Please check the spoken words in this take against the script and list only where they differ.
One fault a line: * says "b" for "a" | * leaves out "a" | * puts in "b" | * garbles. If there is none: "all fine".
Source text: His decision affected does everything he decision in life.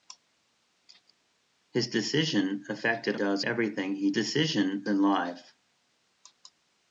all fine